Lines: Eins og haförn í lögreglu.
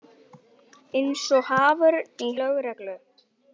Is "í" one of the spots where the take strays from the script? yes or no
no